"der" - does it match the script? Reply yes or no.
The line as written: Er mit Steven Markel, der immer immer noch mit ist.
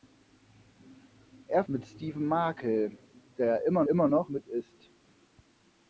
yes